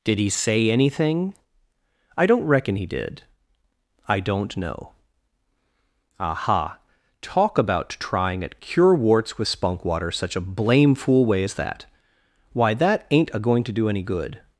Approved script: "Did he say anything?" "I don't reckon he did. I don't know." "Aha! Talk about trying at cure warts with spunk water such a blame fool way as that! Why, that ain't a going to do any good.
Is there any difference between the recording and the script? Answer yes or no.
no